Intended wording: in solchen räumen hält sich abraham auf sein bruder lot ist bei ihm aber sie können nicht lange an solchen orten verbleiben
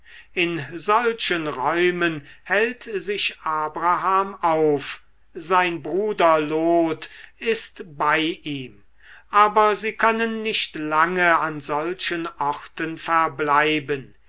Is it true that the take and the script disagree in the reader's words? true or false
false